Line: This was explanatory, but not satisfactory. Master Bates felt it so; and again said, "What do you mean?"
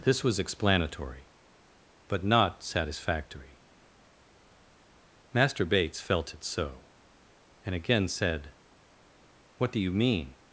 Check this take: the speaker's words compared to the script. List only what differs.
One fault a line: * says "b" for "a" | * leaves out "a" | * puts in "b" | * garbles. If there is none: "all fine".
all fine